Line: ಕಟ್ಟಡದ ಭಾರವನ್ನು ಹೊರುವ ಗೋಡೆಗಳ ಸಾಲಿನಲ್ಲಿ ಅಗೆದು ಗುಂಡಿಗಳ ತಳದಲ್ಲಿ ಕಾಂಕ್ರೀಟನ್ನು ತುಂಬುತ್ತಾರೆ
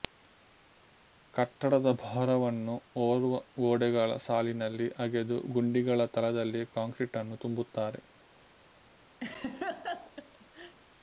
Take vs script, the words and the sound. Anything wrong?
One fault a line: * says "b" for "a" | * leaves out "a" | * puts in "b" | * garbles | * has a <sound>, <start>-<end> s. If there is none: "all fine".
* has a laugh, 9.2-10.8 s